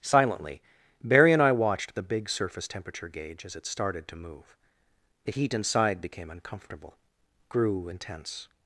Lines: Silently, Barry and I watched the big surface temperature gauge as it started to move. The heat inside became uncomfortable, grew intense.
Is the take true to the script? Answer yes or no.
yes